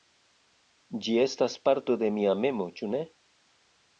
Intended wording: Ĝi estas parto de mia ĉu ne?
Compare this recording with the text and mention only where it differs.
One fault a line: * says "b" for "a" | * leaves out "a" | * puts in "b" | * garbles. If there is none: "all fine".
* puts in "memo"